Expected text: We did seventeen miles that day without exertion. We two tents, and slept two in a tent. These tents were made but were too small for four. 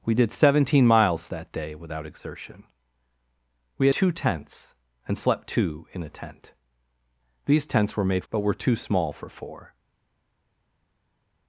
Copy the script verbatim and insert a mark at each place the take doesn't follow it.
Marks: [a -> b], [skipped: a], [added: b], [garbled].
We did seventeen miles that day without exertion. We two tents, and slept two in a tent. These tents were made but were too small for four.